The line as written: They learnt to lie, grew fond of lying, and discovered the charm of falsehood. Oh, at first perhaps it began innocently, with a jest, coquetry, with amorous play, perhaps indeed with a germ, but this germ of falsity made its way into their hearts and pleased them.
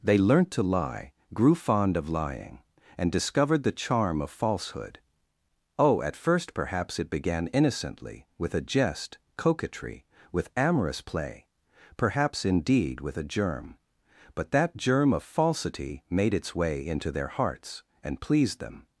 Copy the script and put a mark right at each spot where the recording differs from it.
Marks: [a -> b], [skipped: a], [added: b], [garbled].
They learnt to lie, grew fond of lying, and discovered the charm of falsehood. Oh, at first perhaps it began innocently, with a jest, coquetry, with amorous play, perhaps indeed with a germ, but [this -> that] germ of falsity made its way into their hearts and pleased them.